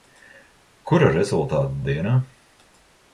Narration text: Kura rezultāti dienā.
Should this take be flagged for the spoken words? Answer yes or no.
no